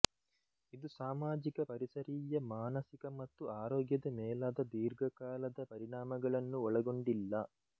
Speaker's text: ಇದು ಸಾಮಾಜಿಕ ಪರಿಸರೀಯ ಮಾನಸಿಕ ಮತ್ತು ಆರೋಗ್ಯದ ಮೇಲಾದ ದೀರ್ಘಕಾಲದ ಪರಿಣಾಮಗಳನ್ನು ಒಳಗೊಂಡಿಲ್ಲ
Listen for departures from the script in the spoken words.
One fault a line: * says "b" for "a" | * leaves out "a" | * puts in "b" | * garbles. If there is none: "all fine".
all fine